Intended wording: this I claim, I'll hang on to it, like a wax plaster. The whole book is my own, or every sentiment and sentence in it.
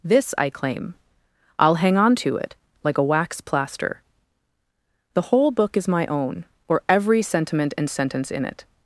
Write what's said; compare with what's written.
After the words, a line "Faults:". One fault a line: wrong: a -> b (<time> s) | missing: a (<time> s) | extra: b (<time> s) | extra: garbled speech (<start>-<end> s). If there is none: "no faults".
this I claim, I'll hang on to it, like a wax plaster. The whole book is my own, or every sentiment and sentence in it.
Faults:
no faults